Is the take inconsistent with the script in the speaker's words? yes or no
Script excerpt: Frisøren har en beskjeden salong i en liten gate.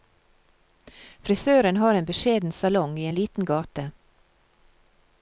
no